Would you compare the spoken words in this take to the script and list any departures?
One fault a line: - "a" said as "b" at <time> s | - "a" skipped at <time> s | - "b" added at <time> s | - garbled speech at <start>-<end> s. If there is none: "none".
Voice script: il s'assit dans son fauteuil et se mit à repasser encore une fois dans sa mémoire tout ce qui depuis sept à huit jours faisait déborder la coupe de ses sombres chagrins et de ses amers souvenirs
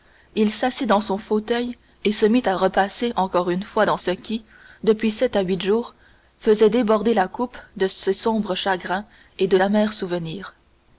- "sa mémoire tout" skipped at 4.0 s
- "ses" skipped at 9.6 s